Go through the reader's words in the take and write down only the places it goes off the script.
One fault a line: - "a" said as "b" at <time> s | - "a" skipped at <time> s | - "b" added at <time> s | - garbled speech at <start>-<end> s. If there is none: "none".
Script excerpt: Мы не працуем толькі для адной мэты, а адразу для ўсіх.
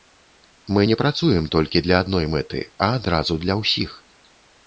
none